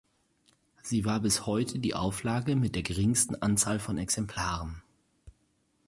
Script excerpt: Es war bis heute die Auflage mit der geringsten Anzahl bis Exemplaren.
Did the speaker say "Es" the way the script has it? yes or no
no